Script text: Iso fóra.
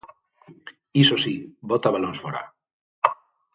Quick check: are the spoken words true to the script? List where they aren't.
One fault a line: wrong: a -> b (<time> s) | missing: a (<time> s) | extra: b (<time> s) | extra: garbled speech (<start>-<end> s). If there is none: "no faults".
extra: si bota balóns (1.2 s)